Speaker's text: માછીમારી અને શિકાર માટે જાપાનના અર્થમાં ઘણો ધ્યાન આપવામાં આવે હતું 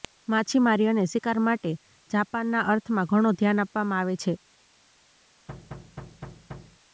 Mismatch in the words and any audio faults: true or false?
true